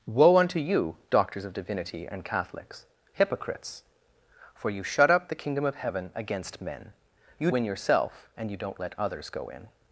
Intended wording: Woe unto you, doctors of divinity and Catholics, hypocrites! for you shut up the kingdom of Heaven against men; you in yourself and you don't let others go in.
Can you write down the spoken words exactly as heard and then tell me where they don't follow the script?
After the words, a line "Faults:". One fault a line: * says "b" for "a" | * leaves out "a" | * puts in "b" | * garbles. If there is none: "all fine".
Woe unto you, doctors of divinity and Catholics, hypocrites! for you shut up the kingdom of Heaven against men; you in yourself and you don't let others go in.
Faults:
all fine